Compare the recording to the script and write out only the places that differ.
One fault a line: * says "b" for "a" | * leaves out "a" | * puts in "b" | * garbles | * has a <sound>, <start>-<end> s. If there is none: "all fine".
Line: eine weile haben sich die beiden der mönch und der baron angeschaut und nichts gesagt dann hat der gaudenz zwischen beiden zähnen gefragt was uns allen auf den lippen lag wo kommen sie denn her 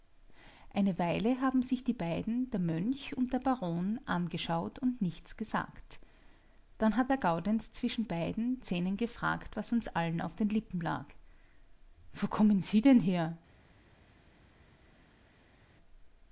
all fine